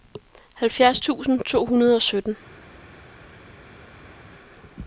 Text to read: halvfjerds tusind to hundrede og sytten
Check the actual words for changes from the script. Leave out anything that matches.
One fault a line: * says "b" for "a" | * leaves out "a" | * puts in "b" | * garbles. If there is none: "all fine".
all fine